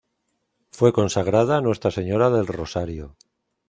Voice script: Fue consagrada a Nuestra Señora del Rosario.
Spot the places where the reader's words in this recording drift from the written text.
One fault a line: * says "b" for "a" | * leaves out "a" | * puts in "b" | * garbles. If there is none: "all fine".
all fine